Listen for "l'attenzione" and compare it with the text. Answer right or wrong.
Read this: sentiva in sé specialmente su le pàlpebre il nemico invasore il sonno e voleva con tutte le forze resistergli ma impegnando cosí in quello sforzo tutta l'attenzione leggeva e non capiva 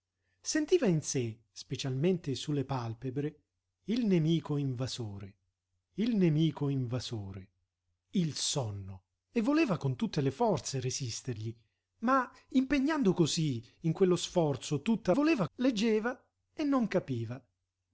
wrong